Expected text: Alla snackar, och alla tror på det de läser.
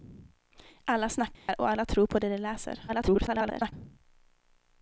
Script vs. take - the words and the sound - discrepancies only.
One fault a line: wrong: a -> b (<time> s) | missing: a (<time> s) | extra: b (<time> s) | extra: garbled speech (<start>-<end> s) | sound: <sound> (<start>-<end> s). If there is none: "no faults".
sound: dropout (1.3-1.5 s)
extra: garbled speech (2.9-3.7 s)